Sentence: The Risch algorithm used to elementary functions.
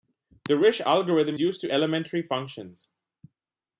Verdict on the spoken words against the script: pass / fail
pass